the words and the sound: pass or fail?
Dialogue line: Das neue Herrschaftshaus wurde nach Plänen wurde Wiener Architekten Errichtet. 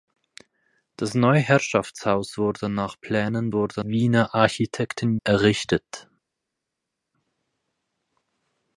pass